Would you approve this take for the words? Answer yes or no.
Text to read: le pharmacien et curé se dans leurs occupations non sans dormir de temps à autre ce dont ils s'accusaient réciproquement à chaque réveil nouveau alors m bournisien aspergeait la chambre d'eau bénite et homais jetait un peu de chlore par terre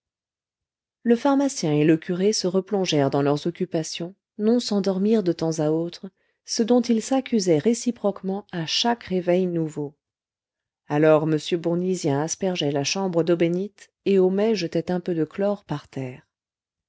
no